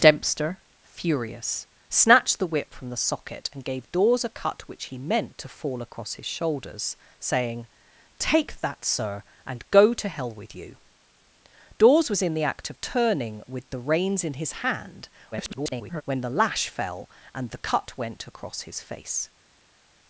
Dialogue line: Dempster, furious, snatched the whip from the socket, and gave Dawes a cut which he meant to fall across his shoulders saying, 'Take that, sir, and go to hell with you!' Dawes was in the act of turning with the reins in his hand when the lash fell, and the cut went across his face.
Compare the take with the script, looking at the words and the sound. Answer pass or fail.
fail